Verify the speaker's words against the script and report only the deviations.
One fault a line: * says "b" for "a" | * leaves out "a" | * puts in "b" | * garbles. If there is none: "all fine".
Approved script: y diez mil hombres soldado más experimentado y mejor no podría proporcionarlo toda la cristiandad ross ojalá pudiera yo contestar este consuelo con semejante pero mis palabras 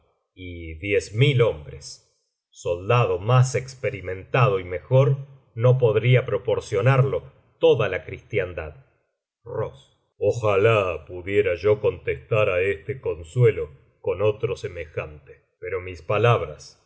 * puts in "á"
* puts in "otro"